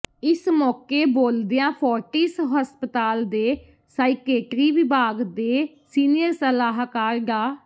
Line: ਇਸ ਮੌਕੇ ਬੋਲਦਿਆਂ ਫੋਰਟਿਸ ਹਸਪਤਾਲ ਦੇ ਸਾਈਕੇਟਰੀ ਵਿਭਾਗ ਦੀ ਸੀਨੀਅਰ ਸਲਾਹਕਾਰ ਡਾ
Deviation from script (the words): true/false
true